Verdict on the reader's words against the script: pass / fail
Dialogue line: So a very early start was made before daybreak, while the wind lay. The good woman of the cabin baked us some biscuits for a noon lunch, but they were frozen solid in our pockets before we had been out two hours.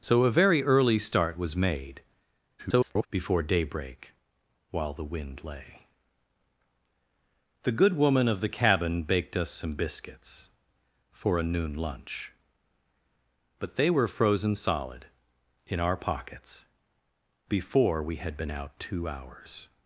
fail